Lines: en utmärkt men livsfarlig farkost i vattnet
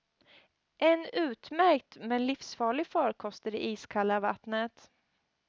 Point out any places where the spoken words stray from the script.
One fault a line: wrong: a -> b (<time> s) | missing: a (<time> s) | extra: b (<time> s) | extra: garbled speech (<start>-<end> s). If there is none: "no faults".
extra: det iskalla (3.5 s)